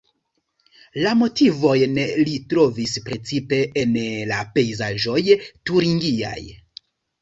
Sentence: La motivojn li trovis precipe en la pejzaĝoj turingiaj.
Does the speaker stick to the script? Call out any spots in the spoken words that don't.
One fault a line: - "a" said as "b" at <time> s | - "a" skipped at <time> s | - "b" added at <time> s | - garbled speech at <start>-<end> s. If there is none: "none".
none